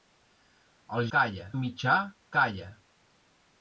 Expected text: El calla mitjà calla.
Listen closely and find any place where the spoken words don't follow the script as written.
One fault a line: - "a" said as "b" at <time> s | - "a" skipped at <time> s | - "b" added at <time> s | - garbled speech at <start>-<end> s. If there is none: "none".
none